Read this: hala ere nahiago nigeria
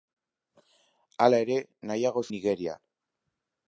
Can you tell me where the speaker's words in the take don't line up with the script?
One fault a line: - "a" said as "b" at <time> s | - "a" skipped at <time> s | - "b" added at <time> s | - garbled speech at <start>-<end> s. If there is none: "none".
none